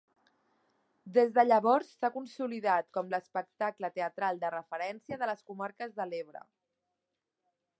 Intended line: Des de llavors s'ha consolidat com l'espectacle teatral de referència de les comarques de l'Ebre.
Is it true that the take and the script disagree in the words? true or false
false